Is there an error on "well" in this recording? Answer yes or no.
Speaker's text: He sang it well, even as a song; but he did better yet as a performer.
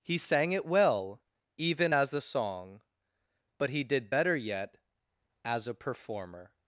no